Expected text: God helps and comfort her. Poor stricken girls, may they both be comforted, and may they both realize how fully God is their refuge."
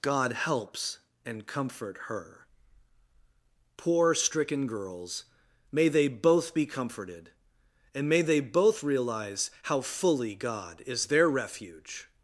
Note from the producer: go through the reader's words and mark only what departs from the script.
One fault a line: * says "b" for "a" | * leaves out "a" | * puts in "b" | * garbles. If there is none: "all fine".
all fine